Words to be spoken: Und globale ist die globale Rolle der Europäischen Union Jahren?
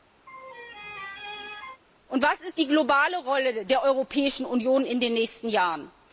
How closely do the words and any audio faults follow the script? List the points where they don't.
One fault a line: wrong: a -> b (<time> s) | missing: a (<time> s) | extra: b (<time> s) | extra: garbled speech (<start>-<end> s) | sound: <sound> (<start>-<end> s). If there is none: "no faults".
sound: laugh (0.3-1.8 s)
wrong: globale -> was (2.2 s)
extra: in den nächsten (4.9 s)